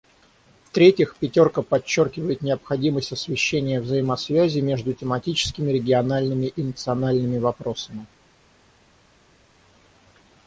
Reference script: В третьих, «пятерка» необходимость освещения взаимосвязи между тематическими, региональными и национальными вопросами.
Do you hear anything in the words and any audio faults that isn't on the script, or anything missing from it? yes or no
yes